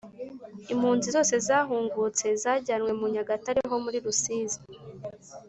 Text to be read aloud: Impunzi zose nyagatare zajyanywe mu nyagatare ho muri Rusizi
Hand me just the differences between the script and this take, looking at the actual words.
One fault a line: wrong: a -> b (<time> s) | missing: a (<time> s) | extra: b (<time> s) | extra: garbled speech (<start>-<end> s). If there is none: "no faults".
wrong: nyagatare -> zahungutse (1.5 s)